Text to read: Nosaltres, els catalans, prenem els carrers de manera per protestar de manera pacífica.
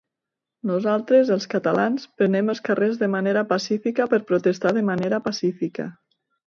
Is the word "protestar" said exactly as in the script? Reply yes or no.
yes